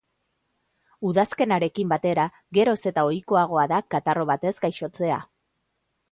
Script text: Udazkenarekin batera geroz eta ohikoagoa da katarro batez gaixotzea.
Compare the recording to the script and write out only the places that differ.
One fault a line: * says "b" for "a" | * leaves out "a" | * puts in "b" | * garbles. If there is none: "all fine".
all fine